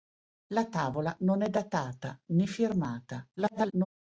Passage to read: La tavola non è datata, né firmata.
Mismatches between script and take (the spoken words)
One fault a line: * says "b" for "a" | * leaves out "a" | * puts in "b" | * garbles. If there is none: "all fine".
* garbles